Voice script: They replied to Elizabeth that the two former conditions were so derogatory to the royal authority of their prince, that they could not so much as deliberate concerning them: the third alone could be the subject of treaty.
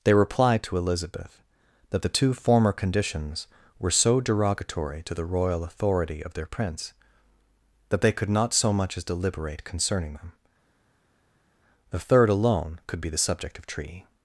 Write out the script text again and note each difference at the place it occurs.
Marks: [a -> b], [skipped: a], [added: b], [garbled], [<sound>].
They replied to Elizabeth that the two former conditions were so derogatory to the royal authority of their prince, that they could not so much as deliberate concerning them: the third alone could be the subject of treaty.